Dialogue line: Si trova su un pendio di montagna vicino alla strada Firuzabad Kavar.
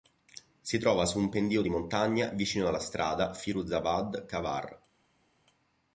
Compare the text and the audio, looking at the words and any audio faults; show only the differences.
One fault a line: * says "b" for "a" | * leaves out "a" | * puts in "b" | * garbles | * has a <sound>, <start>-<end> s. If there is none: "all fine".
all fine